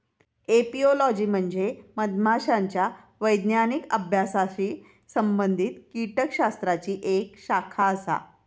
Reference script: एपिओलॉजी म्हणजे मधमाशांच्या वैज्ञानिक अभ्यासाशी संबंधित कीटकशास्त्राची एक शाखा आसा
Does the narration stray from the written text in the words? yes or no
no